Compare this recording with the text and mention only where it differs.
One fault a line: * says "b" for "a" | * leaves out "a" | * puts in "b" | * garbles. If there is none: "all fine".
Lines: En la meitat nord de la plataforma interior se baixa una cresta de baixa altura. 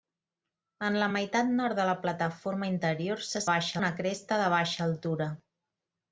all fine